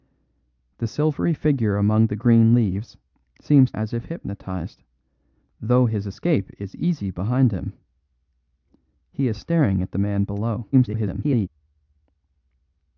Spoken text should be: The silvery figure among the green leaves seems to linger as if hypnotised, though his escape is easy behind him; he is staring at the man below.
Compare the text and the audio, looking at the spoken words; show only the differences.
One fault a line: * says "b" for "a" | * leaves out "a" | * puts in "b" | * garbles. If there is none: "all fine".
* leaves out "to linger"
* garbles